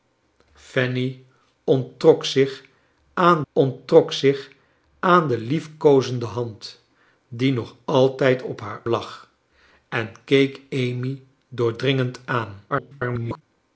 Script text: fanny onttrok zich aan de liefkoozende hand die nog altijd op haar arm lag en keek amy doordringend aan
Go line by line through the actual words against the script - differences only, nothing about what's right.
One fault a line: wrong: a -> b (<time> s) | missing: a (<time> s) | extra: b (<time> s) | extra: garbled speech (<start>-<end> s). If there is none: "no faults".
extra: onttrok zich aan (3.5 s)
missing: arm (8.8 s)
extra: garbled speech (12.7-13.4 s)